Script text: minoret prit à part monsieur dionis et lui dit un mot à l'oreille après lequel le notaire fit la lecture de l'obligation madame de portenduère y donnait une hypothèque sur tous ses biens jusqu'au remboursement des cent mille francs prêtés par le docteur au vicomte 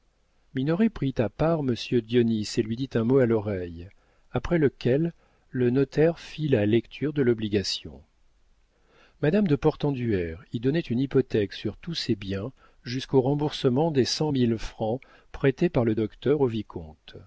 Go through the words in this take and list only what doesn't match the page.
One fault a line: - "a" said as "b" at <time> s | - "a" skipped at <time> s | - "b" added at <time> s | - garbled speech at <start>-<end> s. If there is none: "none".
none